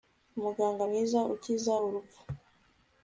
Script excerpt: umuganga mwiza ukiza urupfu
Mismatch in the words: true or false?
false